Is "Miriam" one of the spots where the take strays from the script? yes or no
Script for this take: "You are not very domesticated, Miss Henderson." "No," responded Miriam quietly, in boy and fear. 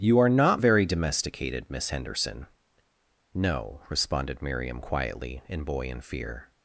no